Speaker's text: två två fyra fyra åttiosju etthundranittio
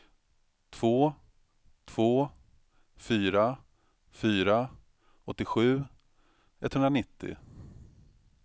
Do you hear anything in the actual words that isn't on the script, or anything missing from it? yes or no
no